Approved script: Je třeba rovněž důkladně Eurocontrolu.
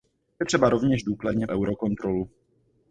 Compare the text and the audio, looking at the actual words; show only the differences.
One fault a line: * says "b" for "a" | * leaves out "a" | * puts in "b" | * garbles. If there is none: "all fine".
all fine